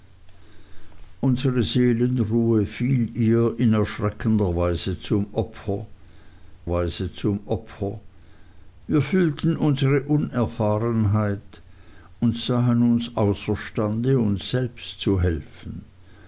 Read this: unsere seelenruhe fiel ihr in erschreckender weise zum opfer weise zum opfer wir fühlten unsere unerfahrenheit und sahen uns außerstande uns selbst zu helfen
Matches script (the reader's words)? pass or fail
pass